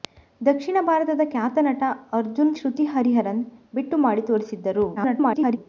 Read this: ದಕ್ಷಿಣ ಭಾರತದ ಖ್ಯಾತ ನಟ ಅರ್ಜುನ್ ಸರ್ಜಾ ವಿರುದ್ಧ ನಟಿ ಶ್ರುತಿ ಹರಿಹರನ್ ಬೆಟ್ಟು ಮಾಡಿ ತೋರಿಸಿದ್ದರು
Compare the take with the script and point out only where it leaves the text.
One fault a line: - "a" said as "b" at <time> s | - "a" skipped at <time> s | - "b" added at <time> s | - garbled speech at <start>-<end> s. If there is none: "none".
- "ಸರ್ಜಾ ವಿರುದ್ಧ ನಟಿ" skipped at 2.5 s
- garbled speech at 5.0-5.6 s